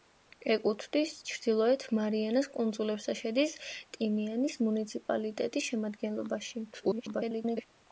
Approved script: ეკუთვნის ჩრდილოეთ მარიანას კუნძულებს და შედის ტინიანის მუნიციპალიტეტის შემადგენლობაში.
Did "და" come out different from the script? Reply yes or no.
no